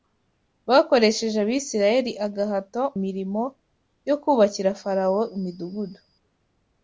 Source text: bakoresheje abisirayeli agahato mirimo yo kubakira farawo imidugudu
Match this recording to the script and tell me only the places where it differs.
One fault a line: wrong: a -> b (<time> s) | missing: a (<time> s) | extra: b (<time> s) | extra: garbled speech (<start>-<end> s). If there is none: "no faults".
no faults